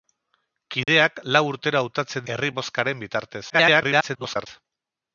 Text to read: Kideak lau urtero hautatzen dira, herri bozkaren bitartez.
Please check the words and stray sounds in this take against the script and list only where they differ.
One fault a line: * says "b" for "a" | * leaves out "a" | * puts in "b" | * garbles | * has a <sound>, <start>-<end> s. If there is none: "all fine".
* has a dropout, 0.8-0.9 s
* leaves out "dira"
* garbles